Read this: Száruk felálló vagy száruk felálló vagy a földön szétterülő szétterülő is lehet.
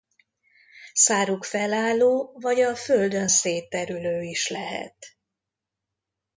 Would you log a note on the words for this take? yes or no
yes